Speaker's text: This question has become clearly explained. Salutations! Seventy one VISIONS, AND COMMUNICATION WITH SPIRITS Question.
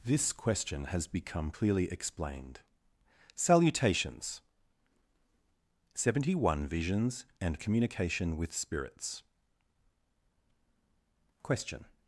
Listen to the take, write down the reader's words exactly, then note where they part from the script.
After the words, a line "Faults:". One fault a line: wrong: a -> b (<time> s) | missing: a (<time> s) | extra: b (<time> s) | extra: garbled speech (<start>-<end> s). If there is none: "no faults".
This question has become clearly explained. Salutations! Seventy one VISIONS, AND COMMUNICATION WITH SPIRITS Question.
Faults:
no faults